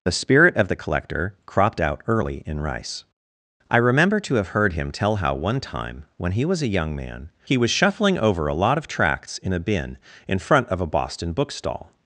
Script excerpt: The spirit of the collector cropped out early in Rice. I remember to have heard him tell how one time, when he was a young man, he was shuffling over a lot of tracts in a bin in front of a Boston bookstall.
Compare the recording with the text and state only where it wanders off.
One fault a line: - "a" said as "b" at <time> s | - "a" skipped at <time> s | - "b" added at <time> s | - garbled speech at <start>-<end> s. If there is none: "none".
none